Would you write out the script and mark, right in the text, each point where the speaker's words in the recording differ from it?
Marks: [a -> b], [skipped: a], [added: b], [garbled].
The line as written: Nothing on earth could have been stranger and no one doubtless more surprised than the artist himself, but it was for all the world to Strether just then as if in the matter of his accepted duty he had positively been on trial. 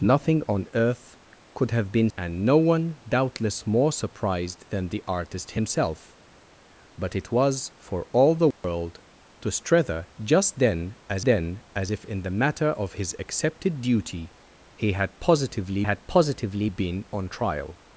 Nothing on earth could have been [skipped: stranger] and no one doubtless more surprised than the artist himself, but it was for all the world to Strether just then as [added: then as] if in the matter of his accepted duty he had positively [added: had positively] been on trial.